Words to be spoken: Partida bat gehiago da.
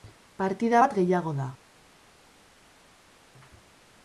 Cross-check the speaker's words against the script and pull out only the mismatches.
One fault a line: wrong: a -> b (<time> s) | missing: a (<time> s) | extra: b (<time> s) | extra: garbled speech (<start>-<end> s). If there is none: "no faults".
no faults